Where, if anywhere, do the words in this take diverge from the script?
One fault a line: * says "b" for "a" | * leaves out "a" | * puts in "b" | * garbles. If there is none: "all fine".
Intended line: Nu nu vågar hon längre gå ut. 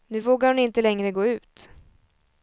* leaves out "nu"
* puts in "inte"